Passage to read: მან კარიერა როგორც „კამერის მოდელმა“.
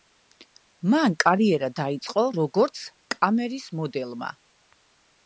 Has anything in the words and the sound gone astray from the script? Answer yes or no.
yes